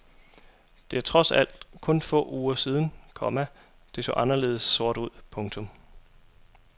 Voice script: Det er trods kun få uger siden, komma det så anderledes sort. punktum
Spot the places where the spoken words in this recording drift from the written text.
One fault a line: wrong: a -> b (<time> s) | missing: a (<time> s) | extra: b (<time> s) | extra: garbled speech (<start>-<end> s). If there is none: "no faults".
extra: alt (1.3 s)
extra: ud (5.0 s)